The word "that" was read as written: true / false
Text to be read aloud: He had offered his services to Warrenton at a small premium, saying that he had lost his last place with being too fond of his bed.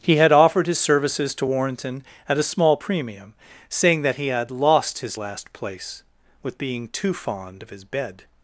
true